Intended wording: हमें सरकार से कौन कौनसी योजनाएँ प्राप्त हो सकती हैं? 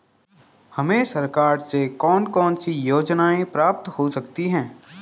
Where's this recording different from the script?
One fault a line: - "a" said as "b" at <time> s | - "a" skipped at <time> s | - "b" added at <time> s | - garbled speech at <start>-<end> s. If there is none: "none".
none